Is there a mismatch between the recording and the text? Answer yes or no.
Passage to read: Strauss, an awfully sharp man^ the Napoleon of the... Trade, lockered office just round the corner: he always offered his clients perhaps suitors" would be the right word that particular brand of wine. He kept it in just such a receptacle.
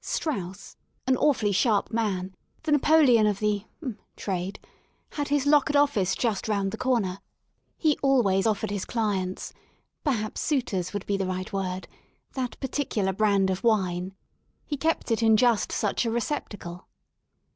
yes